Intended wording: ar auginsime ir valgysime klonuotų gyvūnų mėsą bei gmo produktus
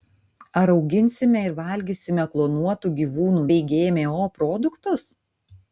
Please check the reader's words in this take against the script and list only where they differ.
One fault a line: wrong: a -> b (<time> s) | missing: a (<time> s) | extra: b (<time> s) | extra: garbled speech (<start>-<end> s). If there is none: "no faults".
missing: mėsą (3.4 s)